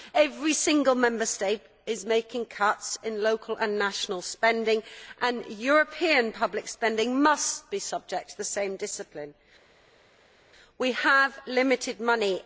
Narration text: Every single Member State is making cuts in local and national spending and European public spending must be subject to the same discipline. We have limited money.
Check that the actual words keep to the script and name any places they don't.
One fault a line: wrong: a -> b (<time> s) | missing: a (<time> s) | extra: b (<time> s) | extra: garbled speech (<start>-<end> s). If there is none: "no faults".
no faults